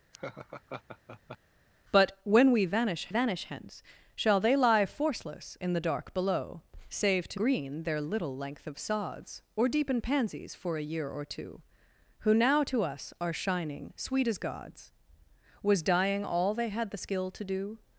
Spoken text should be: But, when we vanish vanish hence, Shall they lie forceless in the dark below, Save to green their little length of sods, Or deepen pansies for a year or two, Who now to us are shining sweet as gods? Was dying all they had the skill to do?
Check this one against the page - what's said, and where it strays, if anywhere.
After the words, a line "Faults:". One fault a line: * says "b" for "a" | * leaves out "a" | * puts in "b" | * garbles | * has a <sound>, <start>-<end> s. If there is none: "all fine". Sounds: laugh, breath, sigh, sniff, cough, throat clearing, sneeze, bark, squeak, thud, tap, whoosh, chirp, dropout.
But, when we vanish vanish hence, Shall they lie forceless in the dark below, Save to green their little length of sods, Or deepen pansies for a year or two, Who now to us are shining sweet as gods? Was dying all they had the skill to do?
Faults:
* has a laugh, 0.1-1.4 s